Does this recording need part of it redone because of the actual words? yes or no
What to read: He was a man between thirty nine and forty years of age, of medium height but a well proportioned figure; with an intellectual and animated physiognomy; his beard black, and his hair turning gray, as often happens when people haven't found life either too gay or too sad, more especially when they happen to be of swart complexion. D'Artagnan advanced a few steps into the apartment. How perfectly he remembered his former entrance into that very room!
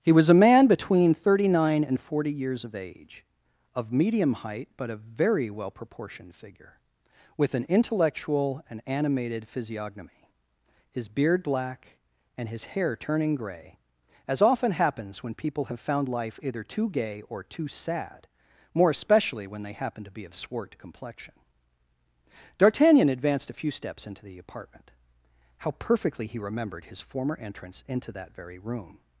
yes